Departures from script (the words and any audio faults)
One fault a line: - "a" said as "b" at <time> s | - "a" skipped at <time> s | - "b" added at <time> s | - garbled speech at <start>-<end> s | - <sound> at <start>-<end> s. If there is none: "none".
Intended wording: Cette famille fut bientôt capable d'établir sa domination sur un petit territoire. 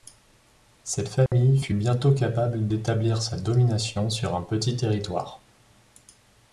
- dropout at 1.3-1.3 s